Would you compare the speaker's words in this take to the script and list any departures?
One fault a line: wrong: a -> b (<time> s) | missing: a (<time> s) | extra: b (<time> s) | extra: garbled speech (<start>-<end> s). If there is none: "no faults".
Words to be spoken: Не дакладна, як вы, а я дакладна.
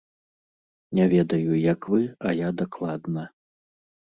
wrong: дакладна -> ведаю (1.1 s)